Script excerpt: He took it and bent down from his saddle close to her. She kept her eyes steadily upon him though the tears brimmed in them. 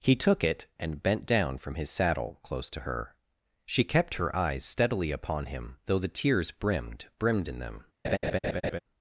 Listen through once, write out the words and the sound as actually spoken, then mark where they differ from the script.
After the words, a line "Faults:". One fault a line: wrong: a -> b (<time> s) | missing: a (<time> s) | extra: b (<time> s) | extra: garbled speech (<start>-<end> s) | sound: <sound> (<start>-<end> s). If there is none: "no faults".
He took it and bent down from his saddle close to her. She kept her eyes steadily upon him though the tears brimmed brimmed in them.
Faults:
extra: brimmed (7.2 s)
sound: laugh (8.0-8.8 s)